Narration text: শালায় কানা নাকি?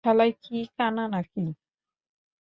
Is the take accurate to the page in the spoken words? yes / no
no